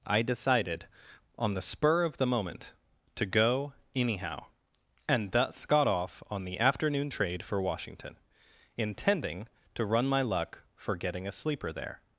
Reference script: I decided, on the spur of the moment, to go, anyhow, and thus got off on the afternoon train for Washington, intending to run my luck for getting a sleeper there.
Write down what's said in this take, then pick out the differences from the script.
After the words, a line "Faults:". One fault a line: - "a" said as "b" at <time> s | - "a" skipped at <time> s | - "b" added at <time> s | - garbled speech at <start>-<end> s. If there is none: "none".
I decided, on the spur of the moment, to go, anyhow, and thus got off on the afternoon trade for Washington, intending to run my luck for getting a sleeper there.
Faults:
- "train" said as "trade" at 7.1 s